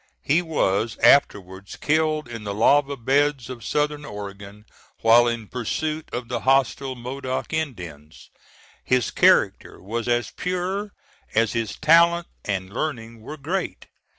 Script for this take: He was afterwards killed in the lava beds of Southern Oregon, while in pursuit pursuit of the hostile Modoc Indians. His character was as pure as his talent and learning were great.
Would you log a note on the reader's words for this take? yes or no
yes